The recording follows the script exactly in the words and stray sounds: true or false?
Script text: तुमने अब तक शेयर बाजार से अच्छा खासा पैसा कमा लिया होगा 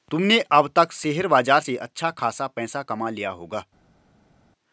true